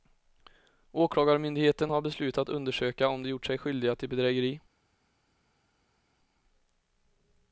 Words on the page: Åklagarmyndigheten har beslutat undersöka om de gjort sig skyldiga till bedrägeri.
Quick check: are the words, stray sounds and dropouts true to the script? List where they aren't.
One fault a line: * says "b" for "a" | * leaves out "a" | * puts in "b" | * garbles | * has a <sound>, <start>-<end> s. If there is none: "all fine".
all fine